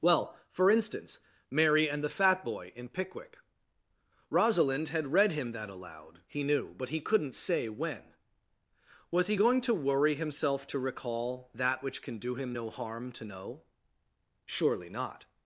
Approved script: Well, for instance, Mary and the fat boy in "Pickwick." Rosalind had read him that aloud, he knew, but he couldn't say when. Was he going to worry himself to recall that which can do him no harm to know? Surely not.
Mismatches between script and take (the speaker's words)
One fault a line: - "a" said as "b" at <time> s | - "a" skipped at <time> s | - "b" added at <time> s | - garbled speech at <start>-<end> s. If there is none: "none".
none